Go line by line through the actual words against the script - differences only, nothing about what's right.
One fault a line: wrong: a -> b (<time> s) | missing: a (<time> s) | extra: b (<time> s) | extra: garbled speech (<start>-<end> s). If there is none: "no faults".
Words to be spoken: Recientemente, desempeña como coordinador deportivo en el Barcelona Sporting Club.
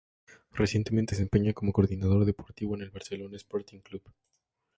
no faults